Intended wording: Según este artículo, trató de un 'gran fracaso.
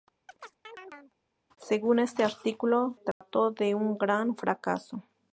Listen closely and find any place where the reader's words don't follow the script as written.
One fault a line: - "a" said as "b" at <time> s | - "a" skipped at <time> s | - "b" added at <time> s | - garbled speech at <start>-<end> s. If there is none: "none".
none